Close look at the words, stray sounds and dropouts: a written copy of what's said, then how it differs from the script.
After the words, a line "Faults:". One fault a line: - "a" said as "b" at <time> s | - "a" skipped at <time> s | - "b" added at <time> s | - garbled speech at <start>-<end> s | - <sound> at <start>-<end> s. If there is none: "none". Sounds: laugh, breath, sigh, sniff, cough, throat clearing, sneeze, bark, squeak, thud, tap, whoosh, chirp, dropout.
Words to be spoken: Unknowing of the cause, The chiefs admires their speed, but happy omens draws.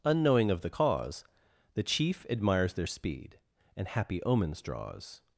Unknowing of the cause, The chief admires their speed, and happy omens draws.
Faults:
- "chiefs" said as "chief" at 1.8 s
- "but" said as "and" at 3.7 s